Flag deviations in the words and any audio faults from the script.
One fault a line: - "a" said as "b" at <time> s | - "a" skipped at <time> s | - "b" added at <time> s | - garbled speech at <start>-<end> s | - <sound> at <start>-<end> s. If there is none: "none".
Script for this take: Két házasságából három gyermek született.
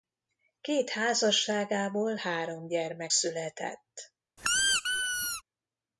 - squeak at 4.4-5.4 s